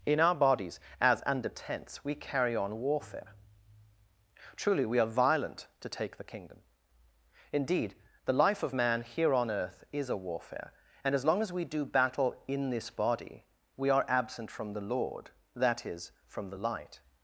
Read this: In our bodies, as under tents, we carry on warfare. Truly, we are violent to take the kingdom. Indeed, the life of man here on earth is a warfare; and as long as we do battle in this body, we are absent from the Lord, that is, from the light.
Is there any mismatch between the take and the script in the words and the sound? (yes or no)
no